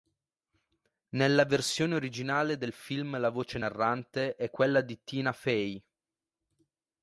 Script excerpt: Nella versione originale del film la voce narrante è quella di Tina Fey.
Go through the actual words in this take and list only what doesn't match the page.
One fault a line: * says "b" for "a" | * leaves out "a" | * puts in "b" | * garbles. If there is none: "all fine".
all fine